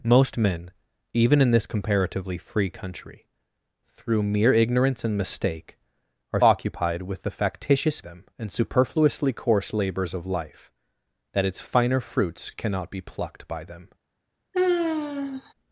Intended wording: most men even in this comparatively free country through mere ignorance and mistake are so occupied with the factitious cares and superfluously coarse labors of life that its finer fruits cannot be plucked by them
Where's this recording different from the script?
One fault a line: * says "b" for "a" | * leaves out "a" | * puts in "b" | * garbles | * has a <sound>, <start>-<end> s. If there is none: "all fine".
* leaves out "so"
* says "them" for "cares"
* has a sigh, 14.5-15.5 s